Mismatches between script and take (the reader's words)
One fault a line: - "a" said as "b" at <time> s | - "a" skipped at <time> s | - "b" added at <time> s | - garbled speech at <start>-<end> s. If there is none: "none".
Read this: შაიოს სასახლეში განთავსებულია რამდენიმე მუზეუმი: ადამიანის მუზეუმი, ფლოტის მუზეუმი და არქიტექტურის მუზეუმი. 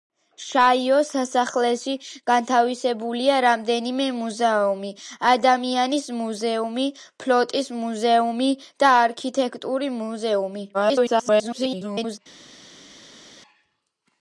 - garbled speech at 10.7-12.2 s